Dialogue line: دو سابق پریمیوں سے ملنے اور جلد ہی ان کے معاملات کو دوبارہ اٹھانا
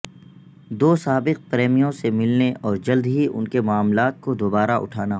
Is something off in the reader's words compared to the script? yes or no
no